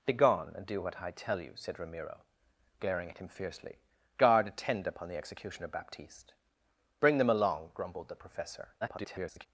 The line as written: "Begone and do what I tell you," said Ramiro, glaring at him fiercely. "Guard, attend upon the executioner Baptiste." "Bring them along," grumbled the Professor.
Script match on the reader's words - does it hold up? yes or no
no